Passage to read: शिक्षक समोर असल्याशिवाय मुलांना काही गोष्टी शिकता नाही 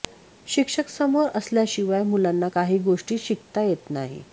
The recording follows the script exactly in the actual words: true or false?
false